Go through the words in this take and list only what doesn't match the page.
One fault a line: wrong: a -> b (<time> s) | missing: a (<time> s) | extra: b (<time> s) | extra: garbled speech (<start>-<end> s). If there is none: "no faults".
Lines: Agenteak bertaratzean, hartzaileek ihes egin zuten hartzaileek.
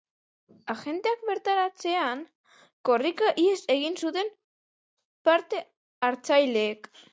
wrong: hartzaileek -> korrika (2.9 s)
extra: parte (5.3 s)